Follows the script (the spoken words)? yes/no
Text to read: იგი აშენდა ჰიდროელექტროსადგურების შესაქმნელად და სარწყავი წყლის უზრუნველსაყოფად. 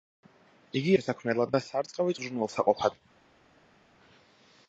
no